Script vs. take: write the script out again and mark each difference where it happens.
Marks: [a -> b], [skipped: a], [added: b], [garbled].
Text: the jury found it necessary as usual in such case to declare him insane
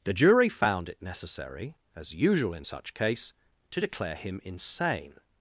the jury found it necessary as usual in such case to declare him insane